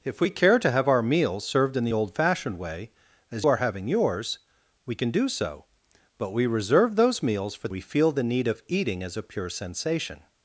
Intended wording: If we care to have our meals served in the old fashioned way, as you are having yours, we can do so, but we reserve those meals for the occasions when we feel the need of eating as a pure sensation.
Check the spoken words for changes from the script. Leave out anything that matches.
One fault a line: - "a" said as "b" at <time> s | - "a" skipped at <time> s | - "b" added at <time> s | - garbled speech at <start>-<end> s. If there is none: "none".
- "you" skipped at 3.5 s
- "the occasions when" skipped at 7.7 s